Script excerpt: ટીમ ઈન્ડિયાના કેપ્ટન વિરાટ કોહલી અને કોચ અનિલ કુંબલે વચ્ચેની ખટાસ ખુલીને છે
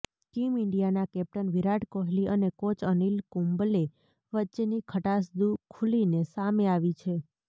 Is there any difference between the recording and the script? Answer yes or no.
yes